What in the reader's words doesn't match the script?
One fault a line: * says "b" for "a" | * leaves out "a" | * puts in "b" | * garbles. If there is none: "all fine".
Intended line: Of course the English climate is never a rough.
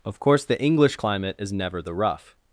* says "the" for "a"